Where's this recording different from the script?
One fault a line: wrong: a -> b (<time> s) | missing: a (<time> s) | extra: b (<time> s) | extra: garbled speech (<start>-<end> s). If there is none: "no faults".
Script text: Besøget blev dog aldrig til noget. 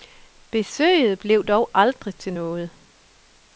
no faults